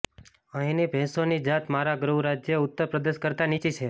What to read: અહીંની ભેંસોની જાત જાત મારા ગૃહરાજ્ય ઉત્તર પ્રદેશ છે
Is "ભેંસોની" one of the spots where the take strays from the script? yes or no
no